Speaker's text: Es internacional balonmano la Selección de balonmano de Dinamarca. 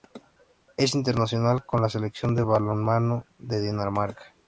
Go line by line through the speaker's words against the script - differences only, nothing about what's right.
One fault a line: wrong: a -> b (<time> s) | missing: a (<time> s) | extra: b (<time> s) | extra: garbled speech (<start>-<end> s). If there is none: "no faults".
wrong: balonmano -> con (1.6 s)